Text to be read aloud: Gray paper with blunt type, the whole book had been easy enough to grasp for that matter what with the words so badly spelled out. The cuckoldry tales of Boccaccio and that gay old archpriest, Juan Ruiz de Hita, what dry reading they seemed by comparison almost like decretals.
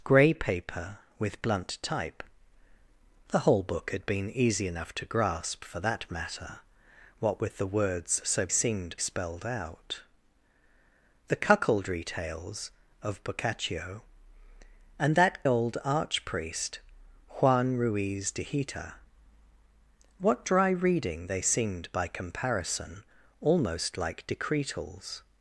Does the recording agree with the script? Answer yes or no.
no